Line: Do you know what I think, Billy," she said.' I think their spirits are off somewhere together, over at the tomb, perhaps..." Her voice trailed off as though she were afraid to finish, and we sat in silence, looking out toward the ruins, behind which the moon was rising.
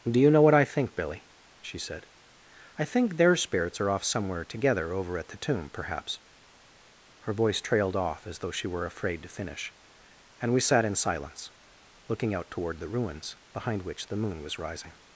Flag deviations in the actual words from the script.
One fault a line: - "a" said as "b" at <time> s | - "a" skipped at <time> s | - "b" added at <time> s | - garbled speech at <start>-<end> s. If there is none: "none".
none